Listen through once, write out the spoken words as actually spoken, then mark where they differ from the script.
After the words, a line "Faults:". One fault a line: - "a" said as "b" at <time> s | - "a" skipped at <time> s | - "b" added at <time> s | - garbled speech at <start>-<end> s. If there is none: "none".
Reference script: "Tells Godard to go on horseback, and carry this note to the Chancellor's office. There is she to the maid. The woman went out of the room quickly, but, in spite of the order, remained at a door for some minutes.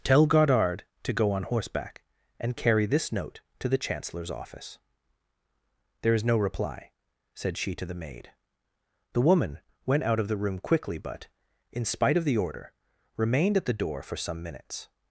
"Tell Godard to go on horseback, and carry this note to the Chancellor's office. There is no reply," said she to the maid. The woman went out of the room quickly, but, in spite of the order, remained at the door for some minutes.
Faults:
- "Tells" said as "Tell" at 0.0 s
- "no reply said" added at 6.2 s
- "a" said as "the" at 13.7 s